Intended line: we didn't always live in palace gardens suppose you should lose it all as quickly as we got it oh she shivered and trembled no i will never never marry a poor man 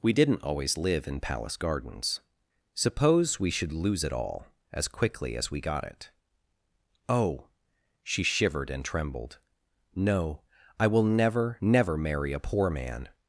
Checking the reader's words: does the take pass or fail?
fail